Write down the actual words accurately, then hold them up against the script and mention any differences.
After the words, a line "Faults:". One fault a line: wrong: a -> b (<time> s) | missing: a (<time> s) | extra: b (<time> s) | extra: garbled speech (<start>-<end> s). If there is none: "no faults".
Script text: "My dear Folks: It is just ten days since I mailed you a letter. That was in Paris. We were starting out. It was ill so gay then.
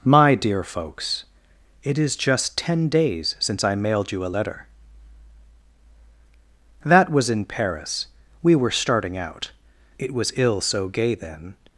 "My dear Folks: It is just ten days since I mailed you a letter. That was in Paris. We were starting out. It was ill so gay then.
Faults:
no faults